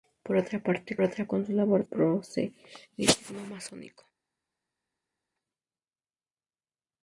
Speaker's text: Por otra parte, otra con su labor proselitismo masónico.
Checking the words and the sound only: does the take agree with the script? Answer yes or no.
yes